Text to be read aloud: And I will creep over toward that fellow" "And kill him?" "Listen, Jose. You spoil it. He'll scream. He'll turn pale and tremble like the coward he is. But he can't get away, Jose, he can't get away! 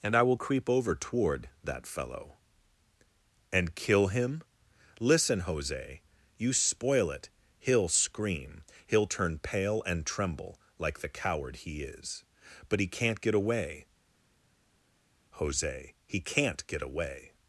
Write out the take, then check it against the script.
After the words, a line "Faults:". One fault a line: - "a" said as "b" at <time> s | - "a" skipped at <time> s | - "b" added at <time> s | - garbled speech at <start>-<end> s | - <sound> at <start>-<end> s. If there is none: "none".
And I will creep over toward that fellow" "And kill him?" "Listen, Jose. You spoil it. He'll scream. He'll turn pale and tremble like the coward he is. But he can't get away, Jose, he can't get away!
Faults:
none